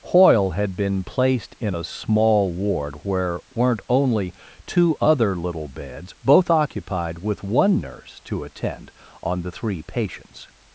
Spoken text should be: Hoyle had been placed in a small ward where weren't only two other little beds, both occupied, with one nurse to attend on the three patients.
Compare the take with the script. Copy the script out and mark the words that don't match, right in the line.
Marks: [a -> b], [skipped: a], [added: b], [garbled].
Hoyle had been placed in a small ward where weren't only two other little beds, both occupied, with one nurse to attend on the three patients.